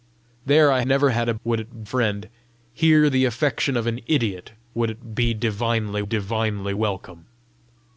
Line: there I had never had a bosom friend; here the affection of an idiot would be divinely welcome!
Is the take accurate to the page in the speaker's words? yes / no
no